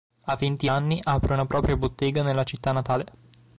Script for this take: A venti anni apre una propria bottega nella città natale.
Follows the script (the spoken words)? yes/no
yes